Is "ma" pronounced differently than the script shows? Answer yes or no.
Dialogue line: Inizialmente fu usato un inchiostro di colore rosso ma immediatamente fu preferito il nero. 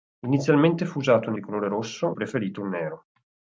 yes